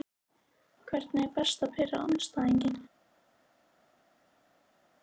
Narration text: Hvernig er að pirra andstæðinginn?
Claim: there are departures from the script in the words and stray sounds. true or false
true